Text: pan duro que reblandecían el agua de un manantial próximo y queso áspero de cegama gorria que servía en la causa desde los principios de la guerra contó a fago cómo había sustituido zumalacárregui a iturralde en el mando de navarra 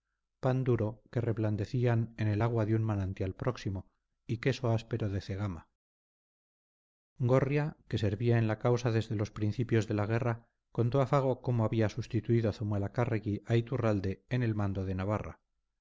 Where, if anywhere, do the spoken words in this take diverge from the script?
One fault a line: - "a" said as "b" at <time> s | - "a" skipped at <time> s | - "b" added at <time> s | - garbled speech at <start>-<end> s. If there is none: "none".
- "en" added at 2.2 s